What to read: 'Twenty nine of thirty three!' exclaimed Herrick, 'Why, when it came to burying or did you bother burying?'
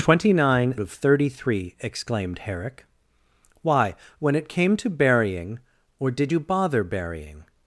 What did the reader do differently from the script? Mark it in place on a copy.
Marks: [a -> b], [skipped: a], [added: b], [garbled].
'Twenty nine of thirty three!' exclaimed Herrick, 'Why, when it came to burying or did you bother burying?'